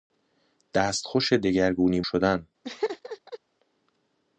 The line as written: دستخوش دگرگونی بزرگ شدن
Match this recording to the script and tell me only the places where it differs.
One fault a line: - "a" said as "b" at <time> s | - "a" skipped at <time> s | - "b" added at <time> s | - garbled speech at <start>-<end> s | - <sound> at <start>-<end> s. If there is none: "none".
- "بزرگ" skipped at 2.0 s
- laugh at 2.6-3.4 s